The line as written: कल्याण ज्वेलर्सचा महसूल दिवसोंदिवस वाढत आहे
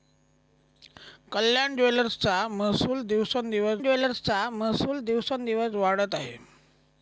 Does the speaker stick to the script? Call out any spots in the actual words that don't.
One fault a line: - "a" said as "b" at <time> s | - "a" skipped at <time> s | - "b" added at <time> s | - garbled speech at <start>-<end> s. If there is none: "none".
- "ज्वेलर्सचा महसूल दिवसोंदिवस" added at 3.8 s